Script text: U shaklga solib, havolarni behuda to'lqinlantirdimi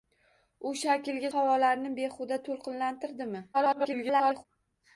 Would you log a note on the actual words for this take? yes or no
yes